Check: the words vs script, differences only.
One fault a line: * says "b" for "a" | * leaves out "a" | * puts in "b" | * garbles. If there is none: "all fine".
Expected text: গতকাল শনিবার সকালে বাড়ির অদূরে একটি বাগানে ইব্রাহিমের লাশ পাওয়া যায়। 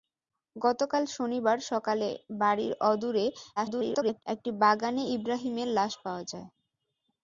* garbles